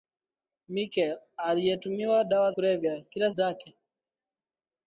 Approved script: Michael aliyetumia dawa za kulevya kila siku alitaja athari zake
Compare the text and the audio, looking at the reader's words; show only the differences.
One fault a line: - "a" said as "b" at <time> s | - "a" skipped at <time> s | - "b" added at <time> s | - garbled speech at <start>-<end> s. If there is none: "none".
- "za" skipped at 2.5 s
- "siku alitaja athari" skipped at 3.3 s